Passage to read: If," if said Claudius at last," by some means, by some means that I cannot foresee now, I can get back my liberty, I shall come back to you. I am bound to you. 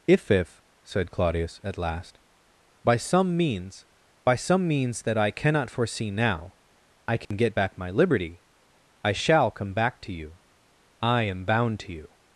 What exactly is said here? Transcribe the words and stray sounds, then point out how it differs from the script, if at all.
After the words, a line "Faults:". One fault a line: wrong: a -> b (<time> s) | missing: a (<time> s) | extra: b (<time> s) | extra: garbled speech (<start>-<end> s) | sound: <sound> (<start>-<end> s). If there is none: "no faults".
If," if said Claudius at last," by some means, by some means that I cannot foresee now, I can get back my liberty, I shall come back to you. I am bound to you.
Faults:
sound: dropout (7.2-7.3 s)